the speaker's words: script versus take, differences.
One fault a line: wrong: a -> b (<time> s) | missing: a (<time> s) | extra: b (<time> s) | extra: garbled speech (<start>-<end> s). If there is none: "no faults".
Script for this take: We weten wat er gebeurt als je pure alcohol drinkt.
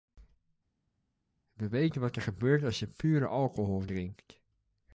no faults